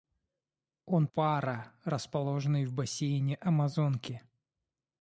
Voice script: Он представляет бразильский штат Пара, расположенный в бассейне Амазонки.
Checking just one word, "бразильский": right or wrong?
wrong